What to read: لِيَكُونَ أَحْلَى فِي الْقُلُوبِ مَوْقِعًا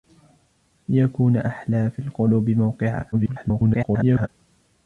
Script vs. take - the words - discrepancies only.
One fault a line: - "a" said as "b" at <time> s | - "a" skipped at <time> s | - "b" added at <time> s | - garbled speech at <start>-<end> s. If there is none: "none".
- garbled speech at 3.1-4.3 s